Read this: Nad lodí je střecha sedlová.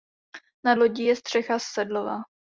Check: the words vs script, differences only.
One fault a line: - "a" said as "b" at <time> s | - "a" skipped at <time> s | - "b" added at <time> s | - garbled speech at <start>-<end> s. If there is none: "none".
none